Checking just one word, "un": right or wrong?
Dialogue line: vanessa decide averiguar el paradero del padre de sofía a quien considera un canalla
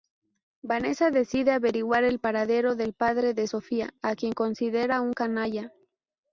right